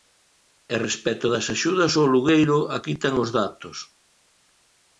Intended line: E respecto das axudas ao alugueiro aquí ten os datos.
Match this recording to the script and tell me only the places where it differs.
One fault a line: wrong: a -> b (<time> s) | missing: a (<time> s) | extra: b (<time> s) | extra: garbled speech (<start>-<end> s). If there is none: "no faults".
no faults